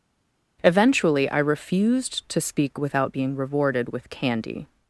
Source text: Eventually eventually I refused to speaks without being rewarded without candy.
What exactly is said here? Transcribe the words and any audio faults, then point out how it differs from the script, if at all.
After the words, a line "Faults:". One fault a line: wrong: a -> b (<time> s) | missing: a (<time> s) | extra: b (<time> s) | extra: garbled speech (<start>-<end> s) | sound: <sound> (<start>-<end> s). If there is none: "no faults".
Eventually I refused to speak without being rewarded with candy.
Faults:
missing: eventually (1.3 s)
wrong: speaks -> speak (2.4 s)
wrong: without -> with (3.9 s)